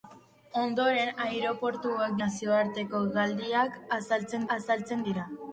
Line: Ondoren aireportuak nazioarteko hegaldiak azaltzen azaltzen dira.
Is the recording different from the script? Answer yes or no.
no